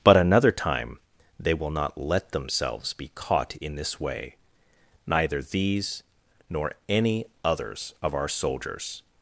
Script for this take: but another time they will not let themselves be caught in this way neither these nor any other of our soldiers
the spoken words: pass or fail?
fail